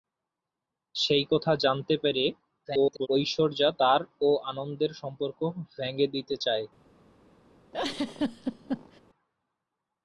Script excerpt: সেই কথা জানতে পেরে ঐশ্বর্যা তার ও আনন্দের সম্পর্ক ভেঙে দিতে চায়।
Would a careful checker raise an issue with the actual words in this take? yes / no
yes